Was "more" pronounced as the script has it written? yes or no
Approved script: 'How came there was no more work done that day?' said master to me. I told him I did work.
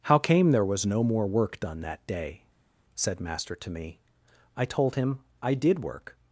yes